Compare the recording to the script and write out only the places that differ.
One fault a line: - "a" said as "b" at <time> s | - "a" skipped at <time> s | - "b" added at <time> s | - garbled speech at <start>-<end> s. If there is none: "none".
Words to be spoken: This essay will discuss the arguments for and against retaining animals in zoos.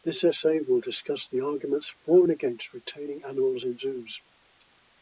none